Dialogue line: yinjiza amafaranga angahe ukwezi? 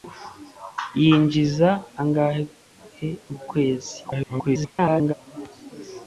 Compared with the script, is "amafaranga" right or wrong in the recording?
wrong